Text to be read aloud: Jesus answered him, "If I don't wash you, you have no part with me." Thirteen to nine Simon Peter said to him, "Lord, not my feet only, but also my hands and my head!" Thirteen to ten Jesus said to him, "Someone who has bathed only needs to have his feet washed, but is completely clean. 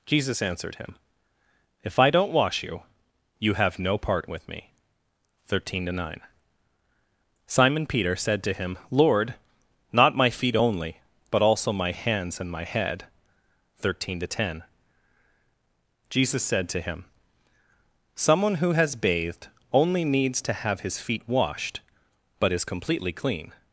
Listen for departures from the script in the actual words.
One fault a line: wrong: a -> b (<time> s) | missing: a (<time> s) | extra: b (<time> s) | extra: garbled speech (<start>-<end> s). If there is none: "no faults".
no faults